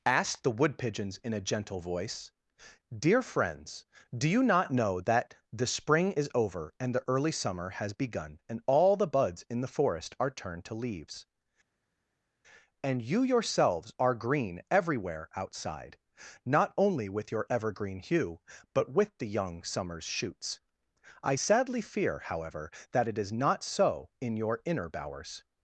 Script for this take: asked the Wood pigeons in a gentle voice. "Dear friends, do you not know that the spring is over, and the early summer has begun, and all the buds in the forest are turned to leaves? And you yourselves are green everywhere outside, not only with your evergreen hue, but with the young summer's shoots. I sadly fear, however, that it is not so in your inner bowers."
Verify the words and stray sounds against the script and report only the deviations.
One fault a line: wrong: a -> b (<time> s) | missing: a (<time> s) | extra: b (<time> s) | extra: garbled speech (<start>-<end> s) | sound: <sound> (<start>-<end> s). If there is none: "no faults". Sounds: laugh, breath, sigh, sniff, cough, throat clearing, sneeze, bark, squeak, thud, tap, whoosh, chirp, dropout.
no faults